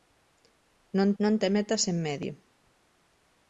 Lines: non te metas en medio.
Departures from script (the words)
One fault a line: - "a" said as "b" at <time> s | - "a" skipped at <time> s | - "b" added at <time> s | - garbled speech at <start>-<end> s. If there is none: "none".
- "non" added at 1.2 s